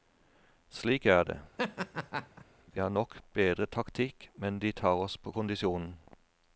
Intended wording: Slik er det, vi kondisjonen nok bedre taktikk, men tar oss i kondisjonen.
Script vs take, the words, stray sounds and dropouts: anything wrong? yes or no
yes